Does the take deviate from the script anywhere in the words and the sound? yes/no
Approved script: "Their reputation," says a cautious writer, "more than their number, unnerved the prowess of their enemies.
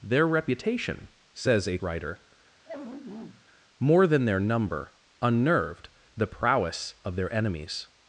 yes